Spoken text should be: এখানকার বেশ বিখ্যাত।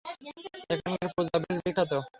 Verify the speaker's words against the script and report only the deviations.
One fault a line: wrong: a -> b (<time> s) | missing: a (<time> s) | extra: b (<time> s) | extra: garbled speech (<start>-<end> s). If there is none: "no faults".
extra: পূজা (1.1 s)